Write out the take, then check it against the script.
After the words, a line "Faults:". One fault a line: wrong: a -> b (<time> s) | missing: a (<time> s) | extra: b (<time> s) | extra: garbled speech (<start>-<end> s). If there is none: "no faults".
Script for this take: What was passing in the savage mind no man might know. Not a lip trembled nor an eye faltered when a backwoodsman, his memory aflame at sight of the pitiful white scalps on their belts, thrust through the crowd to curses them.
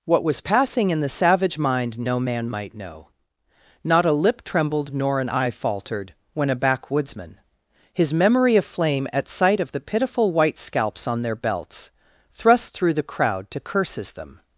What was passing in the savage mind no man might know. Not a lip trembled nor an eye faltered when a backwoodsman, his memory aflame at sight of the pitiful white scalps on their belts, thrust through the crowd to curses them.
Faults:
no faults